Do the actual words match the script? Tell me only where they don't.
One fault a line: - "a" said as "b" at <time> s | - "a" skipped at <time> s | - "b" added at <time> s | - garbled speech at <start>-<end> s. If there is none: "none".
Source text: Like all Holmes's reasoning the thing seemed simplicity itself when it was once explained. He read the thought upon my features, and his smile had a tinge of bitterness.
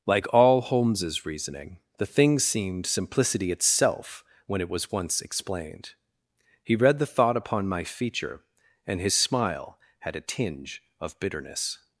- "features" said as "feature" at 7.8 s